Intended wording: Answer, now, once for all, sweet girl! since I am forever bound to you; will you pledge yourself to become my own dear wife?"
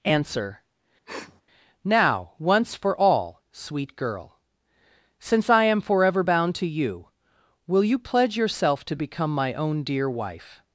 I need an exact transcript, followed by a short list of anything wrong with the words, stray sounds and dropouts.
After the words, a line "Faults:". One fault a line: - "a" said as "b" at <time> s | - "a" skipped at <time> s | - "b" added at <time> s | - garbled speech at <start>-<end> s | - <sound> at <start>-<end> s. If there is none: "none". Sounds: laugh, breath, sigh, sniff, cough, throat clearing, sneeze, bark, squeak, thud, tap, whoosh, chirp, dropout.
Answer, now, once for all, sweet girl! since I am forever bound to you; will you pledge yourself to become my own dear wife?"
Faults:
- sniff at 1.1-1.4 s